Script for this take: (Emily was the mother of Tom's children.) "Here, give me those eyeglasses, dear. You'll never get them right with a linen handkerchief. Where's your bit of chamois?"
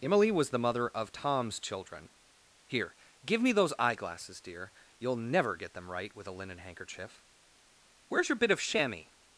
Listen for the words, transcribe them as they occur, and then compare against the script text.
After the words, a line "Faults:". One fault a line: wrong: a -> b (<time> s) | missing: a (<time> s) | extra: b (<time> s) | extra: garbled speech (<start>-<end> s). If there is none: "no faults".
(Emily was the mother of Tom's children.) "Here, give me those eyeglasses, dear. You'll never get them right with a linen handkerchief. Where's your bit of chamois?"
Faults:
no faults